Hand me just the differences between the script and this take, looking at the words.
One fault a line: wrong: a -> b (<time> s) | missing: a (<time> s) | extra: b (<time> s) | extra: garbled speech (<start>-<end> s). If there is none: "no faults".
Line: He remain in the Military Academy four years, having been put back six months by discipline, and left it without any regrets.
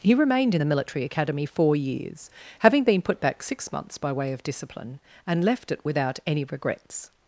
wrong: remain -> remained (0.1 s)
extra: way of (4.1 s)